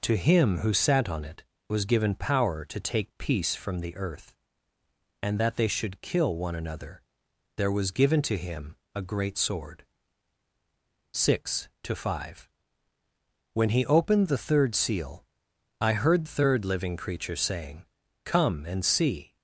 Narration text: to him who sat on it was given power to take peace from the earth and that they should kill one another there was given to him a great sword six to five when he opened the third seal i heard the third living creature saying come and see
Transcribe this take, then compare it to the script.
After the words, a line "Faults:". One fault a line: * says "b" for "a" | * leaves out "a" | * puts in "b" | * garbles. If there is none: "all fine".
to him who sat on it was given power to take peace from the earth and that they should kill one another there was given to him a great sword six to five when he opened the third seal i heard third living creature saying come and see
Faults:
* leaves out "the"